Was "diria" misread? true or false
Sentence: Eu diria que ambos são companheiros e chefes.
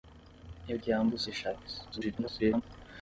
true